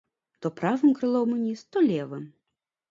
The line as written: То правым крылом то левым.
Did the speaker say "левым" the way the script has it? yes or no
yes